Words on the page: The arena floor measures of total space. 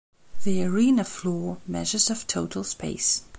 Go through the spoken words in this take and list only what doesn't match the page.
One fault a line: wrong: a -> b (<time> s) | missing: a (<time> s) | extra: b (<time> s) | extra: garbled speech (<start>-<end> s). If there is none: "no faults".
no faults